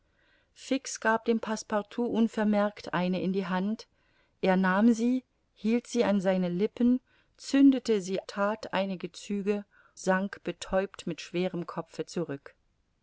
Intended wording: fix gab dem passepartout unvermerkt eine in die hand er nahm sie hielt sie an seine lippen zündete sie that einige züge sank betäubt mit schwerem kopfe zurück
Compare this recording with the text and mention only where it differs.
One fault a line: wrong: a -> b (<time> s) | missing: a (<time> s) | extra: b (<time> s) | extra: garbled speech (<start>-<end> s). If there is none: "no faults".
no faults